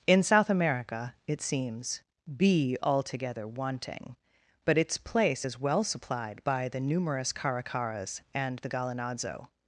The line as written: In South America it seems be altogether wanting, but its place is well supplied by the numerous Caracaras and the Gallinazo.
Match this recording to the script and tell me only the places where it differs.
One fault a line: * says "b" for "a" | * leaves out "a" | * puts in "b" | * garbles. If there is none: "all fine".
all fine